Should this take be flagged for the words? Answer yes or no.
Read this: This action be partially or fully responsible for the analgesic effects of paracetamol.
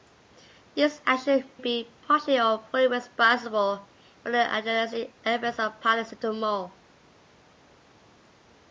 no